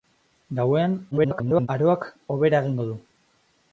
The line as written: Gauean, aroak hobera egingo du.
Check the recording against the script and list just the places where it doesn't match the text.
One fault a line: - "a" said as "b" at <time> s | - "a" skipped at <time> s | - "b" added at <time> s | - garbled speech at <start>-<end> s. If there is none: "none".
- garbled speech at 1.1-1.7 s